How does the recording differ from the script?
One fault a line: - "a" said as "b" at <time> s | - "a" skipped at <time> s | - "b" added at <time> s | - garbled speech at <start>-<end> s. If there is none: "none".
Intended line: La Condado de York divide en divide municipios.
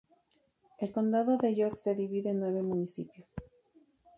- "La" said as "El" at 0.8 s
- "se" added at 1.8 s
- "divide" said as "nueve" at 2.4 s